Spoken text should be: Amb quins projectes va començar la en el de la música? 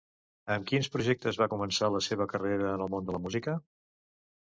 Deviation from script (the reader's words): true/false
true